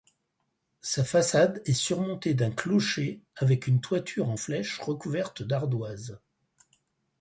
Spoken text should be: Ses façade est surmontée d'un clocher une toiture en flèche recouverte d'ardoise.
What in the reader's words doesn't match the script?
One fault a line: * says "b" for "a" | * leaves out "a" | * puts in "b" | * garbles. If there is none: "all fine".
* says "Sa" for "Ses"
* puts in "avec"